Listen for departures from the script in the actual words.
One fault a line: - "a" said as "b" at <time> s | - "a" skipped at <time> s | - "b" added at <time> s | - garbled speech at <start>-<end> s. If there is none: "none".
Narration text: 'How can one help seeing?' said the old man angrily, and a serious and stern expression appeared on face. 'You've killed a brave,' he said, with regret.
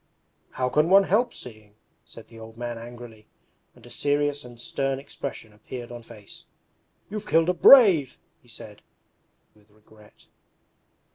none